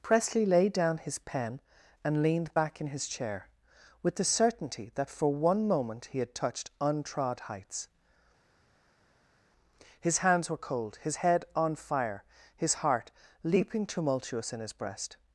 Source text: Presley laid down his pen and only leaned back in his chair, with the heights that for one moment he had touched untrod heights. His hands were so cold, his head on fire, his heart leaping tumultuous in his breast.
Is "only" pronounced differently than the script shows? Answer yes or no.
yes